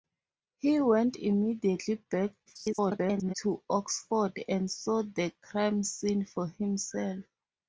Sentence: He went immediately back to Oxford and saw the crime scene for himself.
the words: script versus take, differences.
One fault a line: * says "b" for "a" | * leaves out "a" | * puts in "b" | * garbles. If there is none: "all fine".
* garbles